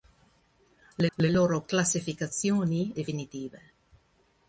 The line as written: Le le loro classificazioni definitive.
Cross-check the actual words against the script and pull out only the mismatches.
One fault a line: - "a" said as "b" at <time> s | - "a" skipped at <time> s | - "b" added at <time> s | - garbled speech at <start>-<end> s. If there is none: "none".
none